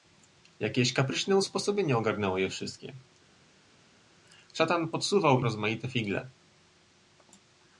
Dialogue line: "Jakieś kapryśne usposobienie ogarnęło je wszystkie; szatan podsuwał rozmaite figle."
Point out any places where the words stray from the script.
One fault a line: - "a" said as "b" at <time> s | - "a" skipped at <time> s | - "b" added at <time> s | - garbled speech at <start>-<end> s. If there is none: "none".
none